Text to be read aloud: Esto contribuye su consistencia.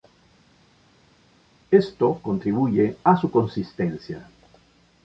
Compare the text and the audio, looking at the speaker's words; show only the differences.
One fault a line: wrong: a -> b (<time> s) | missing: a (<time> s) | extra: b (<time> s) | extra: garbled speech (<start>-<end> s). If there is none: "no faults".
extra: a (3.0 s)